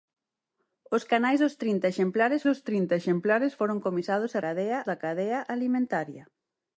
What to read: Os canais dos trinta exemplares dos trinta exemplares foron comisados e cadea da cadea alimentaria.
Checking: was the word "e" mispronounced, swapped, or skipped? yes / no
no